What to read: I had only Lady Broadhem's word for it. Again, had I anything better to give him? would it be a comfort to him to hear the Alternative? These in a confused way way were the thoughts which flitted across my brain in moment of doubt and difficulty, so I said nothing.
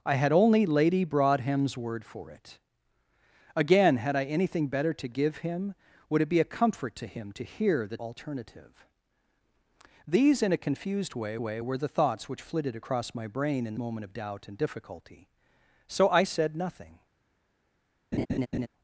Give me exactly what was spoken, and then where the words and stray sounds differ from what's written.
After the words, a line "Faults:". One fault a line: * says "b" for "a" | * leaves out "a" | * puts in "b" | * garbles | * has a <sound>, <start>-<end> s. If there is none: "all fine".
I had only Lady Broadhem's word for it. Again, had I anything better to give him? would it be a comfort to him to hear the Alternative? These in a confused way way were the thoughts which flitted across my brain in moment of doubt and difficulty, so I said nothing.
Faults:
* has a laugh, 18.1-18.7 s